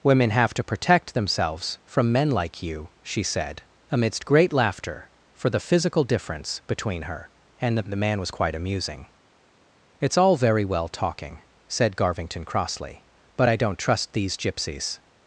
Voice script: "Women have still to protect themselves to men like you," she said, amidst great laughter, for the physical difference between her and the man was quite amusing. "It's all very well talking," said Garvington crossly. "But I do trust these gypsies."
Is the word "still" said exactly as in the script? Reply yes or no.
no